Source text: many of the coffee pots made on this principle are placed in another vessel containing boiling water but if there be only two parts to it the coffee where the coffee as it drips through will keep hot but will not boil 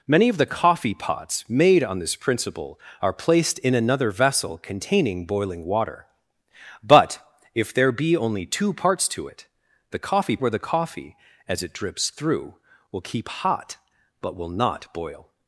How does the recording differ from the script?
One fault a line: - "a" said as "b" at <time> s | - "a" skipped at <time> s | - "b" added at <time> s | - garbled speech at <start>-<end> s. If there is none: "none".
none